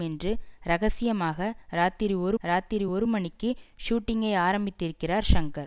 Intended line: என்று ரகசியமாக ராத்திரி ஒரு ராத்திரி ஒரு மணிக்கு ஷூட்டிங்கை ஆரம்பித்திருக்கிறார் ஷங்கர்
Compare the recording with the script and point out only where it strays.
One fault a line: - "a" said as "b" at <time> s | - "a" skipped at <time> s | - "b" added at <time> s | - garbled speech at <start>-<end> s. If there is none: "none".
none